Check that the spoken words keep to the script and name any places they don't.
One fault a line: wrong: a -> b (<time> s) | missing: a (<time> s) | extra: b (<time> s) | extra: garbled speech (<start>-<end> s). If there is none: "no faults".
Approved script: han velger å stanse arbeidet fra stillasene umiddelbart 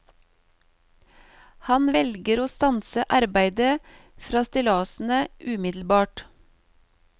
no faults